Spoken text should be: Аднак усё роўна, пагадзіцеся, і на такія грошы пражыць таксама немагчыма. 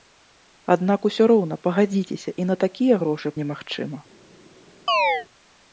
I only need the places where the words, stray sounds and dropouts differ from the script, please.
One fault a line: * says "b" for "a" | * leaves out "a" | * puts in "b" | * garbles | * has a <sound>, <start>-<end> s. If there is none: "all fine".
* leaves out "пражыць таксама"
* has a chirp, 4.9-5.3 s